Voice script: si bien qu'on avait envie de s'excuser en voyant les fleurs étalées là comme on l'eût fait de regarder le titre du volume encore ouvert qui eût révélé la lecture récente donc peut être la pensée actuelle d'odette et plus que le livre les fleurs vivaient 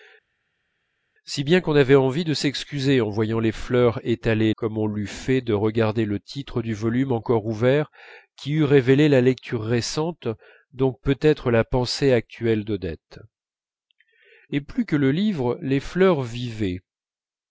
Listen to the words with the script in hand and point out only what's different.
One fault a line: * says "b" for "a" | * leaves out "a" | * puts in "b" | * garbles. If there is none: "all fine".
* leaves out "là"